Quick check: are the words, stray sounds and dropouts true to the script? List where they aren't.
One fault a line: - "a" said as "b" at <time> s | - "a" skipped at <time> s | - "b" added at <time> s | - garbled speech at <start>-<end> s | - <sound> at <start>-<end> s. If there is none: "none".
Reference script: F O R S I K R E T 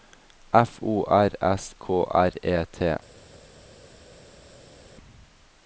- "I" skipped at 1.8 s